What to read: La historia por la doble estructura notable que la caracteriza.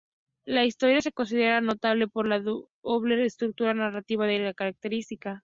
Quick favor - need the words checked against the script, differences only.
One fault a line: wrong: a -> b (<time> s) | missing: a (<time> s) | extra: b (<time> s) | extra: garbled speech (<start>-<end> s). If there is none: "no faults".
extra: se considera notable (1.0 s)
wrong: notable -> narrativa (3.8 s)